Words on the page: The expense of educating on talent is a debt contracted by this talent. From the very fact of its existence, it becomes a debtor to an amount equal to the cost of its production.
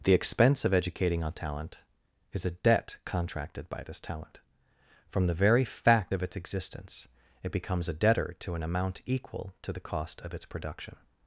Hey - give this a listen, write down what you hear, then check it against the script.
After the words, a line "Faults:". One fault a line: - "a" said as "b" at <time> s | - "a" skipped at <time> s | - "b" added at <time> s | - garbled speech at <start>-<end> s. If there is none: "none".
The expense of educating on talent is a debt contracted by this talent. From the very fact of its existence, it becomes a debtor to an amount equal to the cost of its production.
Faults:
none